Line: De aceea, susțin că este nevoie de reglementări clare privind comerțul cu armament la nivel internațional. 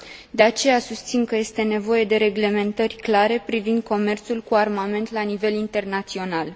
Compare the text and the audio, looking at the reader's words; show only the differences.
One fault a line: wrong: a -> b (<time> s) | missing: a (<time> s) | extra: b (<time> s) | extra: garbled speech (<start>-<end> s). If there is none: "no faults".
no faults